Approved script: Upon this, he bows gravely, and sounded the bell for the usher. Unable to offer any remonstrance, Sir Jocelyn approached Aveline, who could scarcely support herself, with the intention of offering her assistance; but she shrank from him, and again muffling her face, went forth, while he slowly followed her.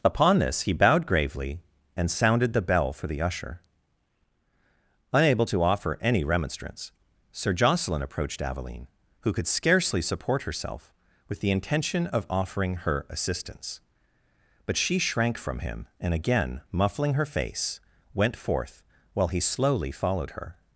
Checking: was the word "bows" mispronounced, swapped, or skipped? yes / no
yes